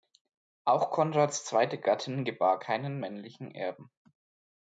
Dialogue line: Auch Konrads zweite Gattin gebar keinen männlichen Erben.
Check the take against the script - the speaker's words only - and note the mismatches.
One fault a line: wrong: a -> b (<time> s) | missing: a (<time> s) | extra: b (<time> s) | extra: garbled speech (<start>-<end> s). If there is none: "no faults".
no faults